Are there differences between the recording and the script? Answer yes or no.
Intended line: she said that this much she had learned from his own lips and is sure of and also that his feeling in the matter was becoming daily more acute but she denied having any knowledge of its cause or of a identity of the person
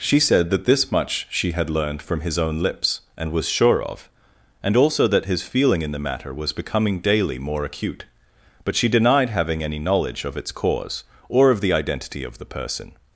yes